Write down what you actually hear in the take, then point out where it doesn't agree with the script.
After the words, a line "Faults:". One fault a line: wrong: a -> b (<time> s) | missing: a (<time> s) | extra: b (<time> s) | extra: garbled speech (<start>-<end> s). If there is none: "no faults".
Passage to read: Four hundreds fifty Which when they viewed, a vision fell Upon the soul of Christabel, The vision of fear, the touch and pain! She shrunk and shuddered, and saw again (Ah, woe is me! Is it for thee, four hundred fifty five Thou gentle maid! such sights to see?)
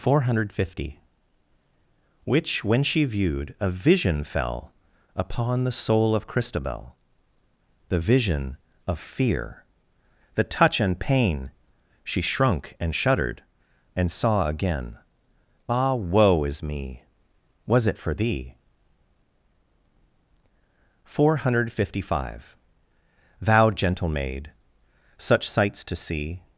Four hundred fifty Which when she viewed, a vision fell Upon the soul of Christabel, The vision of fear, the touch and pain! She shrunk and shuddered, and saw again (Ah, woe is me! Was it for thee, four hundred fifty five Thou gentle maid! such sights to see?)
Faults:
wrong: hundreds -> hundred (0.2 s)
wrong: they -> she (2.8 s)
wrong: Is -> Was (17.7 s)